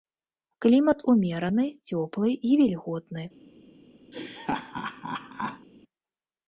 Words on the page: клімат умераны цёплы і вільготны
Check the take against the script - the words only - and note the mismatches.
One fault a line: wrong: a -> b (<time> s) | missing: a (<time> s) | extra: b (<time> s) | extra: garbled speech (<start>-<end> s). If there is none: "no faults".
no faults